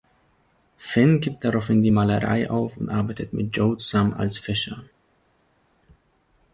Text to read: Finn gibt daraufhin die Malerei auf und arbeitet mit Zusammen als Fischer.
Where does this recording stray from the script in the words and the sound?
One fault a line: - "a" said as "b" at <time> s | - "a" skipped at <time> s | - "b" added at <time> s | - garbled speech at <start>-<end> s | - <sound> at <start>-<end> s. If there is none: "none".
- "Joe" added at 3.6 s